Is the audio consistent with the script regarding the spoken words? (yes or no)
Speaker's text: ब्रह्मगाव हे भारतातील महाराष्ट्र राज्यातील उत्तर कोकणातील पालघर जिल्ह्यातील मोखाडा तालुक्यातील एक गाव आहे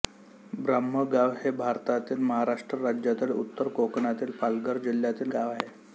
no